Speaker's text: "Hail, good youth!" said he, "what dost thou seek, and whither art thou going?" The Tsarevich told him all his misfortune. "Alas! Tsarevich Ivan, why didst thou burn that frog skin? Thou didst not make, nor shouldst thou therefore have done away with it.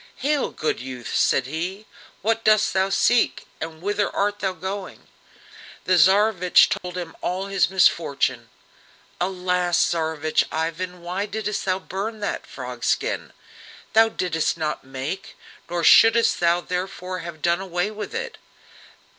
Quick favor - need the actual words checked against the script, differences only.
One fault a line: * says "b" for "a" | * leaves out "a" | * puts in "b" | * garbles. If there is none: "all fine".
all fine